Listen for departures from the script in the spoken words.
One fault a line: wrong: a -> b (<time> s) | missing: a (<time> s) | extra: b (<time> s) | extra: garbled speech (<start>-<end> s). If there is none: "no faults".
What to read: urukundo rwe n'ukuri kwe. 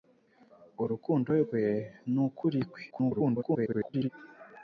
extra: garbled speech (2.9-4.1 s)